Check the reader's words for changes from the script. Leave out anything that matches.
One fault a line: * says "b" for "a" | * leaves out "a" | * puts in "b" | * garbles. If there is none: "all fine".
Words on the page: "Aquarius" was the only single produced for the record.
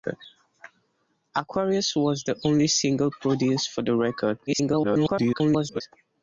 * garbles